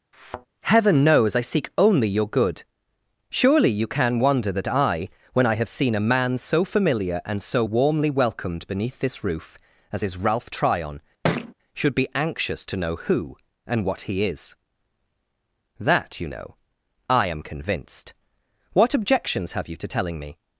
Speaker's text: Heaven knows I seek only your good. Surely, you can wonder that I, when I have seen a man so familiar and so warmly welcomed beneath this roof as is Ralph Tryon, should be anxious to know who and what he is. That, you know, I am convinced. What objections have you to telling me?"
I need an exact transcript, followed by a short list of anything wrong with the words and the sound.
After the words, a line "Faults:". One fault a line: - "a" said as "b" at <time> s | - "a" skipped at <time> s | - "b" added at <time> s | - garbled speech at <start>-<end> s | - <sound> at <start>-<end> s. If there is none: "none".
Heaven knows I seek only your good. Surely, you can wonder that I, when I have seen a man so familiar and so warmly welcomed beneath this roof as is Ralph Tryon, should be anxious to know who and what he is. That, you know, I am convinced. What objections have you to telling me?"
Faults:
- thud at 0.1-0.5 s
- thud at 11.2-11.5 s